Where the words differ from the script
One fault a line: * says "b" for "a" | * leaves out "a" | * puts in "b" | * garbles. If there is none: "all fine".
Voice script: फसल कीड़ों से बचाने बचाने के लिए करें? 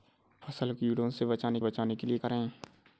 all fine